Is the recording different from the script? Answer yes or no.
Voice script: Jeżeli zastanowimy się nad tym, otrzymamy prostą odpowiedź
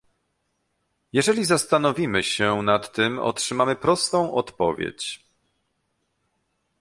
no